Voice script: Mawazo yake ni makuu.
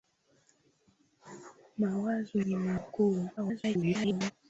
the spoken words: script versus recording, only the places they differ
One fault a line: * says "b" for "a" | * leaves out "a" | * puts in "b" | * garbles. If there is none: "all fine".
* leaves out "yake"
* garbles